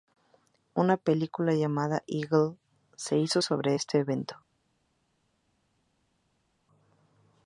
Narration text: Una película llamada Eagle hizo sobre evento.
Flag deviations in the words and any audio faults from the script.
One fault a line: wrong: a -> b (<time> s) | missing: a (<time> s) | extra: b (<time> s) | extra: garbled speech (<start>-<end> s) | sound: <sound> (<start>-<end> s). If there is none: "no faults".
extra: se (3.0 s)
extra: este (3.7 s)